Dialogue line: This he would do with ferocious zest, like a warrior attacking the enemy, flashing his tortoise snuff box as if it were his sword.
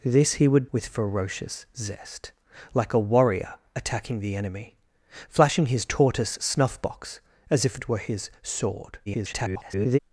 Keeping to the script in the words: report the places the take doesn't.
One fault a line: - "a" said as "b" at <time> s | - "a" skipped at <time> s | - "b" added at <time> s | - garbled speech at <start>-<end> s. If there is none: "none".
- "do" skipped at 0.7 s
- garbled speech at 9.1-10.0 s